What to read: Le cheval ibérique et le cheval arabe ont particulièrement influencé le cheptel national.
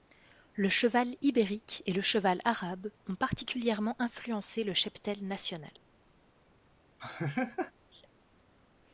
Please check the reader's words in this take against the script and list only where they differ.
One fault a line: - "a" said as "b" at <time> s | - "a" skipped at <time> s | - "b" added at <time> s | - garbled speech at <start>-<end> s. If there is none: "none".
none